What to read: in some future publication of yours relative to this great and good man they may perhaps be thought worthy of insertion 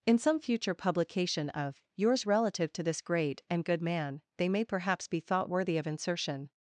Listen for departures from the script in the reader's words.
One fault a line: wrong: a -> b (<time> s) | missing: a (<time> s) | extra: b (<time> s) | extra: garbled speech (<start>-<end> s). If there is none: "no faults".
no faults